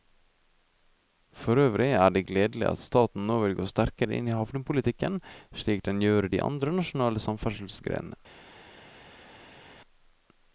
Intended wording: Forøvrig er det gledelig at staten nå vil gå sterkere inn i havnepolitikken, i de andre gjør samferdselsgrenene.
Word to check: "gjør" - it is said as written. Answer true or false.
false